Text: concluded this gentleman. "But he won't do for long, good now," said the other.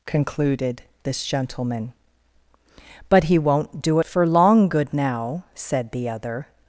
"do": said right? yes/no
yes